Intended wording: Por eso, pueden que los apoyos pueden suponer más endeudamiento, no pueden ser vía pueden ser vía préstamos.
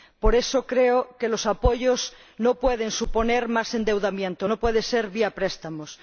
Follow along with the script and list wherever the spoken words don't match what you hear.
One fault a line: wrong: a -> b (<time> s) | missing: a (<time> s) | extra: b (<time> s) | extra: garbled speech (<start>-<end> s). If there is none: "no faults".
wrong: pueden -> creo (0.7 s)
extra: no (2.4 s)
missing: pueden ser vía (5.3 s)